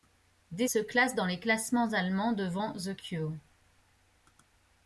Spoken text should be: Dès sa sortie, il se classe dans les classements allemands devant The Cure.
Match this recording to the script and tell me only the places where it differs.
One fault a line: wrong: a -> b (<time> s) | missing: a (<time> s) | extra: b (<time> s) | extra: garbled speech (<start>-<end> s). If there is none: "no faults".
missing: sa sortie il (0.7 s)